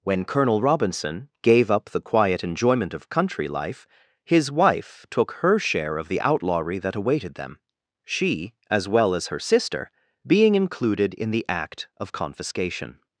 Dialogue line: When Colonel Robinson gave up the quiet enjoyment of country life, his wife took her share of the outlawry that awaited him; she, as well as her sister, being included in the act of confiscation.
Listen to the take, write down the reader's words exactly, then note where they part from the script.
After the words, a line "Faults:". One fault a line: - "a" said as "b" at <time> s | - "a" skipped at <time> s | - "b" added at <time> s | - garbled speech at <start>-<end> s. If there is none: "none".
When Colonel Robinson gave up the quiet enjoyment of country life, his wife took her share of the outlawry that awaited them; she, as well as her sister, being included in the act of confiscation.
Faults:
- "him" said as "them" at 7.3 s